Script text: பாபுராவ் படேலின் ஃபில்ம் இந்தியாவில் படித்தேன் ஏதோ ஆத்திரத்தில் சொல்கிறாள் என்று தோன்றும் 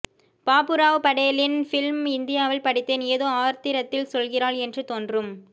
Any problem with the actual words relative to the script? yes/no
no